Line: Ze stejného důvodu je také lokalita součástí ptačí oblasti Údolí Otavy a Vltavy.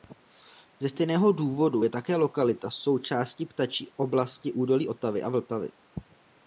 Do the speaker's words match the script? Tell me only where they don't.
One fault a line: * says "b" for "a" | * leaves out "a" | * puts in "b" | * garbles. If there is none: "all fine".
all fine